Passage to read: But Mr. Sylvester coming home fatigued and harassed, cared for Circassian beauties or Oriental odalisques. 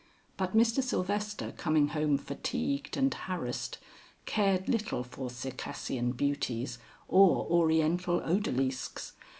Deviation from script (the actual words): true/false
true